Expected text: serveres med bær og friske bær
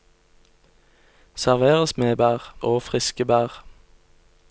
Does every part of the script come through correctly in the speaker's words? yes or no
yes